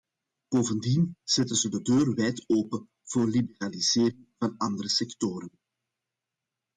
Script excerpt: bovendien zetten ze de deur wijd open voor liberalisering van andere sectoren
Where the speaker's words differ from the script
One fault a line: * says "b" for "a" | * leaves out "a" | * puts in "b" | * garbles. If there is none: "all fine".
all fine